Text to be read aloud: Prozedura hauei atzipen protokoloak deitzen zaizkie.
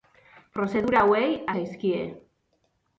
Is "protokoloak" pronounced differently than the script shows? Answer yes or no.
yes